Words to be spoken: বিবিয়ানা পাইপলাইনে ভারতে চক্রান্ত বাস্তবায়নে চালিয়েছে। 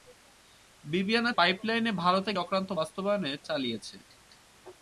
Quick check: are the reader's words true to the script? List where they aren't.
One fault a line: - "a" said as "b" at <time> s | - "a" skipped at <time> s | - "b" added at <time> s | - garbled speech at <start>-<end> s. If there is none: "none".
none